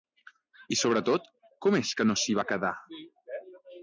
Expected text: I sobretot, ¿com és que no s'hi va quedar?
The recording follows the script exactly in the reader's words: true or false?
true